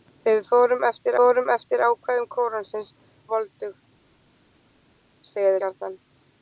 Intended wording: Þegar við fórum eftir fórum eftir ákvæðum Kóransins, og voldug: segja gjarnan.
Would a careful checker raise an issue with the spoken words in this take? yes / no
no